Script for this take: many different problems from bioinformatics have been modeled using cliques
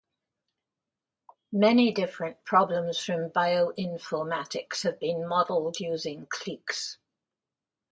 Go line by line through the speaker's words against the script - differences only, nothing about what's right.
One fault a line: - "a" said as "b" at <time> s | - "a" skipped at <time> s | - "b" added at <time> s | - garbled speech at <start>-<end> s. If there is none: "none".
none